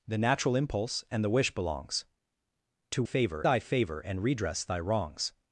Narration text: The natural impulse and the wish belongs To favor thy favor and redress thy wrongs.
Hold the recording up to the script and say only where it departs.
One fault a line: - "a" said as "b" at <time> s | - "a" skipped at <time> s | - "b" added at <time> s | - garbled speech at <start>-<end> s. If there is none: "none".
none